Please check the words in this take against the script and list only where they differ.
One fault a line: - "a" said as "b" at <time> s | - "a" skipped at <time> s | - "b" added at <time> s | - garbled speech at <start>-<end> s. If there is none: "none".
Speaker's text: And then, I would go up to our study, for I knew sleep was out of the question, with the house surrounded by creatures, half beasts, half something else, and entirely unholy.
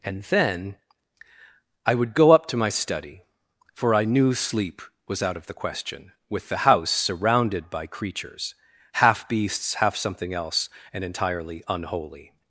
- "our" said as "my" at 2.6 s